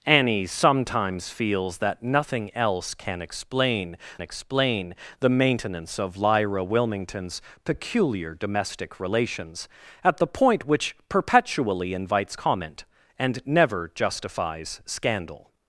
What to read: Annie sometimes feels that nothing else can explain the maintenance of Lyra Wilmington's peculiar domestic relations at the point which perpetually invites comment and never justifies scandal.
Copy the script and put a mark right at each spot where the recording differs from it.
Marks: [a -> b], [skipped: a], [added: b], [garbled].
Annie sometimes feels that nothing else can explain [added: explain] the maintenance of Lyra Wilmington's peculiar domestic relations at the point which perpetually invites comment and never justifies scandal.